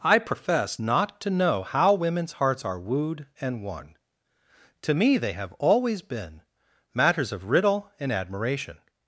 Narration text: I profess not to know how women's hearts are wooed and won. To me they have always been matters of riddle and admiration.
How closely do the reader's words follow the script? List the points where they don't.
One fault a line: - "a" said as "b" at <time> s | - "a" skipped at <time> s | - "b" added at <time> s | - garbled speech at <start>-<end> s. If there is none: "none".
none